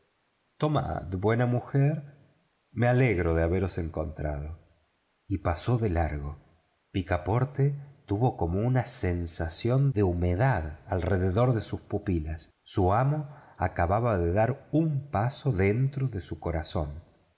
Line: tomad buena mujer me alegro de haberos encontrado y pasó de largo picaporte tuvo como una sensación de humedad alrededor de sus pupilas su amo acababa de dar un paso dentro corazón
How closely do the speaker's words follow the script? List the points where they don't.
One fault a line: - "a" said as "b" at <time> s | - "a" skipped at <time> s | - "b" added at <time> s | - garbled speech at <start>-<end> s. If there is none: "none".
- "de su" added at 16.1 s